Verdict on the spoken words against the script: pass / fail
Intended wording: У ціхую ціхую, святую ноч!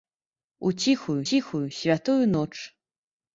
pass